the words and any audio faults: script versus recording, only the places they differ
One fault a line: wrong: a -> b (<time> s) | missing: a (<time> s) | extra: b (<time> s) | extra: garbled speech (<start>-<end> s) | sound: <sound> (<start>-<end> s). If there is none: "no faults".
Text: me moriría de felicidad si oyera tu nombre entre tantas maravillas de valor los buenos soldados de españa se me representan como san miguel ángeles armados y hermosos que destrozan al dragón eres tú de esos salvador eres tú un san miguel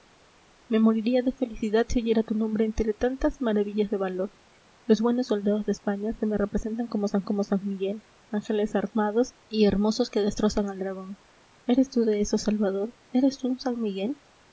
extra: como san (7.2 s)